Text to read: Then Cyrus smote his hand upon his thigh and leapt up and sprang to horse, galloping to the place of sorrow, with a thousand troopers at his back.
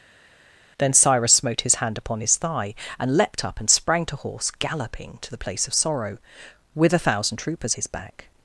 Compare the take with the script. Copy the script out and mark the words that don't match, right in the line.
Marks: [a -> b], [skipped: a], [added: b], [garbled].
Then Cyrus smote his hand upon his thigh and leapt up and sprang to horse, galloping to the place of sorrow, with a thousand troopers [skipped: at] his back.